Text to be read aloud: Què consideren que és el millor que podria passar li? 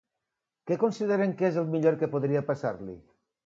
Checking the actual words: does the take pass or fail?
pass